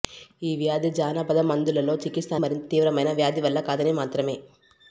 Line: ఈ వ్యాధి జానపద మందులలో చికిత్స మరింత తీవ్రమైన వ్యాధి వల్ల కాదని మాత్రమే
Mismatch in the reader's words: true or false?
false